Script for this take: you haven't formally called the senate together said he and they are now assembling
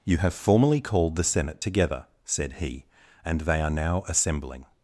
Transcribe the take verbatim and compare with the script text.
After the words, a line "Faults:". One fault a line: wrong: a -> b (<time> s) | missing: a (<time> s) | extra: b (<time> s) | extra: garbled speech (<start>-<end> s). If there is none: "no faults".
you have formally called the senate together said he and they are now assembling
Faults:
wrong: haven't -> have (0.2 s)